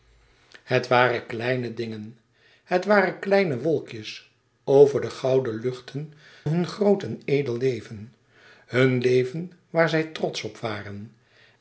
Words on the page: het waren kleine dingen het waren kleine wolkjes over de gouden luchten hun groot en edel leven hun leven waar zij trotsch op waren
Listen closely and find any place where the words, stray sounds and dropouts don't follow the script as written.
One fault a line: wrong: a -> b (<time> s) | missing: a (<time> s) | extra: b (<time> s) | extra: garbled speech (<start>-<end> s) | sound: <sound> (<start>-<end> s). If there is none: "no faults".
no faults